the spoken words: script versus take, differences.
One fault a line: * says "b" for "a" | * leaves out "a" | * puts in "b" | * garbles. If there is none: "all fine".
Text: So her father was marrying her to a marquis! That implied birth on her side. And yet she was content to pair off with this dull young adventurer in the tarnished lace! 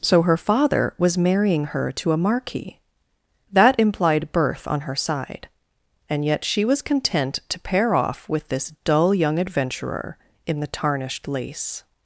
all fine